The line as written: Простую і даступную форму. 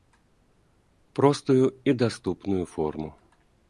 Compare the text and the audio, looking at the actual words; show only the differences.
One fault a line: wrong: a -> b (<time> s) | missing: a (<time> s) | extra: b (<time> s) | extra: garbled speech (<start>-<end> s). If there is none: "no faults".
no faults